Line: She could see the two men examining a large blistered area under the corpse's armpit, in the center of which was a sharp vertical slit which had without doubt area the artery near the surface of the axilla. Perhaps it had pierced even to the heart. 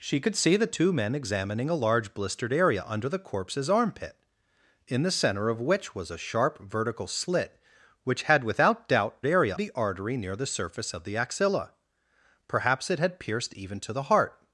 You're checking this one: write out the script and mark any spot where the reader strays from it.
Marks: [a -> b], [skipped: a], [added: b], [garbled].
She could see the two men examining a large blistered area under the corpse's armpit, in the center of which was a sharp vertical slit which had without doubt area the artery near the surface of the axilla. Perhaps it had pierced even to the heart.